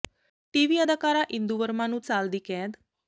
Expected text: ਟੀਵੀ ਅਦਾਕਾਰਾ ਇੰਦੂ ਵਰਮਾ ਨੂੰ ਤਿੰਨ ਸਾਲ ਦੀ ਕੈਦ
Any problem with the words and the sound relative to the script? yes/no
yes